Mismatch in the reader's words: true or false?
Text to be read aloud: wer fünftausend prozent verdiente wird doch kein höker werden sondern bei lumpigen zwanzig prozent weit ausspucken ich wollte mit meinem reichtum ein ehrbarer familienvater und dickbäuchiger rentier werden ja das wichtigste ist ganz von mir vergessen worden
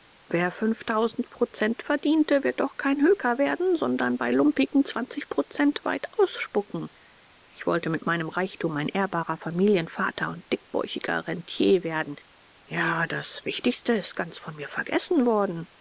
false